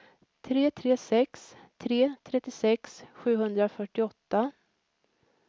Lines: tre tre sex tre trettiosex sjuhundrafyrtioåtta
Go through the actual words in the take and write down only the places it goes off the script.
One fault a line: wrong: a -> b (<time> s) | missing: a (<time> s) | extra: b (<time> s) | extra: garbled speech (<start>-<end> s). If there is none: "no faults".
no faults